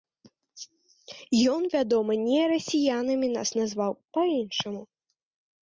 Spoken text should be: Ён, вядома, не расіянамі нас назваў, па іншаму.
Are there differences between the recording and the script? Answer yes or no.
no